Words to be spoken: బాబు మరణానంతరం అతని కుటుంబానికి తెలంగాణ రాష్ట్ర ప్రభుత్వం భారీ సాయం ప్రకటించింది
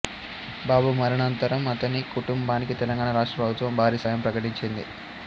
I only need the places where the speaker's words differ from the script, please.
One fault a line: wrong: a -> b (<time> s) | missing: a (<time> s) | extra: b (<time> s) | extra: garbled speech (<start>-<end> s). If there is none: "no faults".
no faults